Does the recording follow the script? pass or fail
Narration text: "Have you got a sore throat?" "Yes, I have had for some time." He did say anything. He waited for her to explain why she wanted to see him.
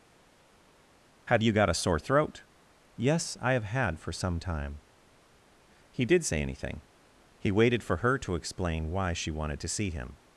pass